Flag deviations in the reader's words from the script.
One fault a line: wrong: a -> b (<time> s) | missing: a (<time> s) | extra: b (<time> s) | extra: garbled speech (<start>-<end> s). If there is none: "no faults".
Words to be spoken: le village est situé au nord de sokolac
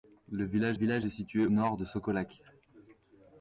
extra: village (0.7 s)
missing: au (1.5 s)